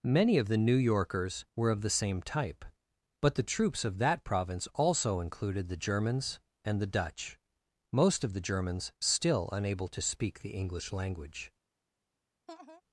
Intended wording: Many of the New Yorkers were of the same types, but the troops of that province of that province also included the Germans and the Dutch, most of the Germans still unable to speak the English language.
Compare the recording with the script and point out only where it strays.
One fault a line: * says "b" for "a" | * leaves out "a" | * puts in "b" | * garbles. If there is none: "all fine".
* says "type" for "types"
* leaves out "of that province"